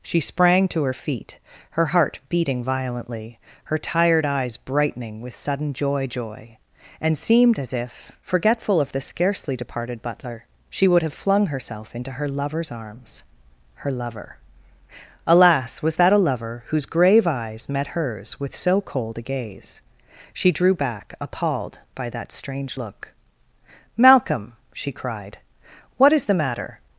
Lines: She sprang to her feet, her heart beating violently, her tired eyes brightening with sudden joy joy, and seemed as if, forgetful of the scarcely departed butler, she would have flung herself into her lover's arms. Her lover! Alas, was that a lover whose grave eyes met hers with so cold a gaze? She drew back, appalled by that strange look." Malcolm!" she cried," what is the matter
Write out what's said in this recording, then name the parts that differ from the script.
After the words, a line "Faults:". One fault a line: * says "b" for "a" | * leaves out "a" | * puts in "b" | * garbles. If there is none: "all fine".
She sprang to her feet, her heart beating violently, her tired eyes brightening with sudden joy joy, and seemed as if, forgetful of the scarcely departed butler, she would have flung herself into her lover's arms. Her lover! Alas, was that a lover whose grave eyes met hers with so cold a gaze? She drew back, appalled by that strange look." Malcolm!" she cried," what is the matter
Faults:
all fine